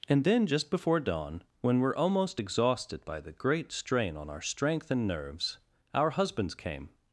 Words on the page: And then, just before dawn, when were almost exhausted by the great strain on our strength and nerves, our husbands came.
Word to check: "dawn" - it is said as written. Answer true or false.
true